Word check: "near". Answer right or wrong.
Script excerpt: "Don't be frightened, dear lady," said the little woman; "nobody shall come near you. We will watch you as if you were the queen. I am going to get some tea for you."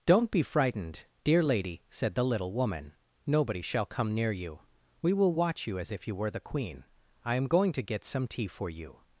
right